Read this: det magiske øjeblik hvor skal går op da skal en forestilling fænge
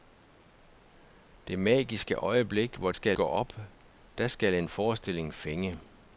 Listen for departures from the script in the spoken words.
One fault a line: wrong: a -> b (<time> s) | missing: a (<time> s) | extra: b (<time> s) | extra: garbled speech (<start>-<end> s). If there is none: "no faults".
no faults